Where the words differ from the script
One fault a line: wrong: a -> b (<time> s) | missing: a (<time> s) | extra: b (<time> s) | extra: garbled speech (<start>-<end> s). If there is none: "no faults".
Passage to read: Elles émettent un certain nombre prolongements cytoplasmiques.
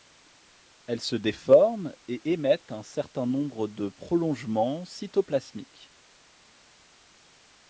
extra: se déforment et (1.0 s)
extra: de (3.7 s)